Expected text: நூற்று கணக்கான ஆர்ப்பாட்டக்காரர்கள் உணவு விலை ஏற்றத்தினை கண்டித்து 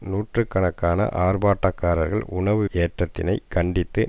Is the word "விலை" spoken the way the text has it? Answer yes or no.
no